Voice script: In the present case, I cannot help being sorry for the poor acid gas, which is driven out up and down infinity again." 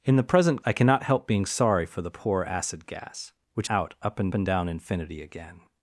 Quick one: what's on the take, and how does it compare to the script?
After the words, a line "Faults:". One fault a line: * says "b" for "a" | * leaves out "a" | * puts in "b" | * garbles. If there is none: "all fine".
In the present I cannot help being sorry for the poor acid gas, which out up and and down infinity again."
Faults:
* leaves out "case"
* leaves out "is driven"
* puts in "and"